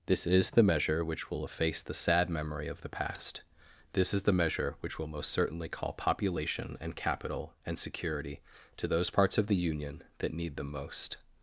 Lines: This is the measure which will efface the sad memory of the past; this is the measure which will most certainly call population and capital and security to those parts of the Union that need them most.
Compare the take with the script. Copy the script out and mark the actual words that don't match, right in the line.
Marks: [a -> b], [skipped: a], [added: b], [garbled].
This is the measure which will efface the sad memory of the past; this is the measure which will most certainly call population and capital and security to those parts of the Union that need them most.